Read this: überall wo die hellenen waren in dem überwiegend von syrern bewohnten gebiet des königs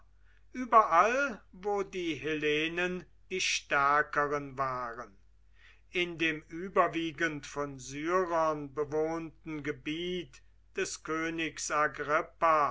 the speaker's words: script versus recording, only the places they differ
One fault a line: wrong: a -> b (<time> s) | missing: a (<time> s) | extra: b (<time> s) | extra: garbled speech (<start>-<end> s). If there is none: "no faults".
extra: die stärkeren (3.3 s)